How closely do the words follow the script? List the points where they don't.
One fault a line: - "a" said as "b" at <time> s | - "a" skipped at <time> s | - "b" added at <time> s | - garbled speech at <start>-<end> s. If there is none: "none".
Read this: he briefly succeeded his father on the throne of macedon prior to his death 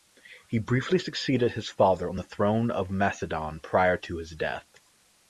none